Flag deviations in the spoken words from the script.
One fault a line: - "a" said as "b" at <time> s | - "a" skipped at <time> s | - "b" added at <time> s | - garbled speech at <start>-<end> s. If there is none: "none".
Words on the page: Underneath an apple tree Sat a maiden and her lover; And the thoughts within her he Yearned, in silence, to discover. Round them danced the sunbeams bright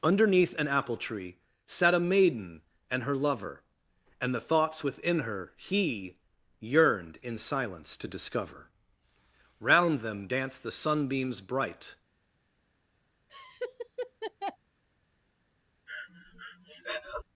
none